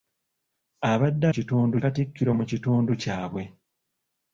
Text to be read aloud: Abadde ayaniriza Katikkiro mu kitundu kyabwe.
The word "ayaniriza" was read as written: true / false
false